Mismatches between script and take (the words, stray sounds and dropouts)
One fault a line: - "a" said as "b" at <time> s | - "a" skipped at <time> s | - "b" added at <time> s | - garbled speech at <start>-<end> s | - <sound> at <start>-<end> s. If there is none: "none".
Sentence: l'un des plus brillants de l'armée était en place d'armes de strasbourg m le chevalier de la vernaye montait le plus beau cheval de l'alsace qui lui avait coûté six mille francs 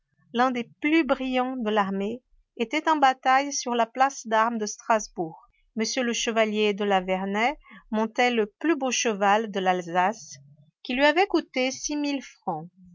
- "bataille sur la" added at 3.0 s